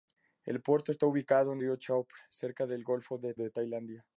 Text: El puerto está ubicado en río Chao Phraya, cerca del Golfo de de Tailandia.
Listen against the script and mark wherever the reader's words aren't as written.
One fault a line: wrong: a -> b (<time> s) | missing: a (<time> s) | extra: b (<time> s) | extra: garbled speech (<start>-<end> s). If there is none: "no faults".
no faults